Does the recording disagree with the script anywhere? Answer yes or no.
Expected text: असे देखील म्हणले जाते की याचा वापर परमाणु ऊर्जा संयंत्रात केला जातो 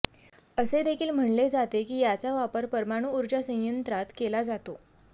no